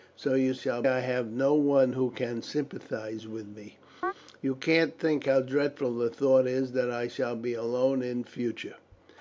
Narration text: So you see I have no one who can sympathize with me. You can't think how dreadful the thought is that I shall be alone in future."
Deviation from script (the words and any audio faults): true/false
true